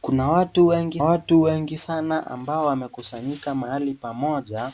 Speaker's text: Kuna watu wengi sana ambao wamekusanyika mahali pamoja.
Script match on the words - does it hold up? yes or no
no